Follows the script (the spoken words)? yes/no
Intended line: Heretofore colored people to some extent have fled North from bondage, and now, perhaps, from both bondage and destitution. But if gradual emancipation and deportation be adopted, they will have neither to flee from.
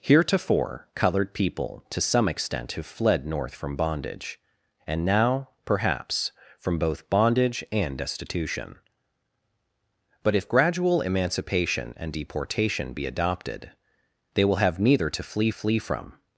no